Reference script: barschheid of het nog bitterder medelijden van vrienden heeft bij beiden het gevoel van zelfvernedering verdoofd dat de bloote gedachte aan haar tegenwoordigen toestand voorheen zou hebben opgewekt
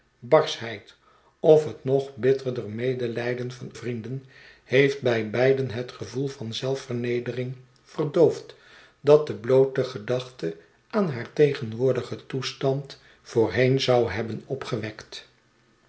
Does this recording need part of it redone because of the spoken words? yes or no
no